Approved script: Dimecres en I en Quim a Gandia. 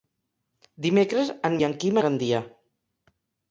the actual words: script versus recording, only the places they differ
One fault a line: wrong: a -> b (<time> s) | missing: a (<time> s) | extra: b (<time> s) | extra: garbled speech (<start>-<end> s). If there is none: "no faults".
no faults